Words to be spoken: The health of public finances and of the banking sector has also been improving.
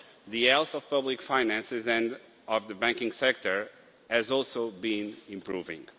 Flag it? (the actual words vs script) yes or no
no